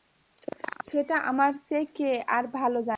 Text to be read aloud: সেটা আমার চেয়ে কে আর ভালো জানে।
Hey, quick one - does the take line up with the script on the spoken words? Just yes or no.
yes